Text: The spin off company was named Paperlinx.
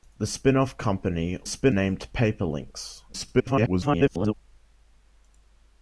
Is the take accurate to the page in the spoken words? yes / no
no